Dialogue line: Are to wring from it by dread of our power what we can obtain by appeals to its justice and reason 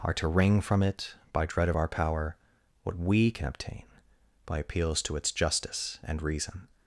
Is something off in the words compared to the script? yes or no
no